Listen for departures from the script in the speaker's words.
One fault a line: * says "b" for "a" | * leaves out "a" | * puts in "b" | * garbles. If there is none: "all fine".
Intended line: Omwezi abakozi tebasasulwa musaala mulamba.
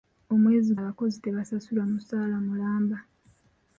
all fine